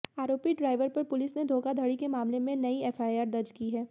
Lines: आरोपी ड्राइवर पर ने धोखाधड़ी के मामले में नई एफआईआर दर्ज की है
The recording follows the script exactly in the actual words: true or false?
false